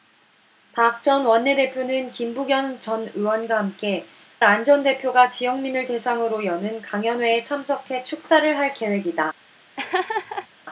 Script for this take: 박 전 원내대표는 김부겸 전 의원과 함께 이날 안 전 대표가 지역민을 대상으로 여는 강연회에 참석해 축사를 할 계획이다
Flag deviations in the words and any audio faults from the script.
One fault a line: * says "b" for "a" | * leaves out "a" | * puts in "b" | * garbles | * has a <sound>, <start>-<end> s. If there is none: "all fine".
* leaves out "이날"
* has a laugh, 9.8-10.5 s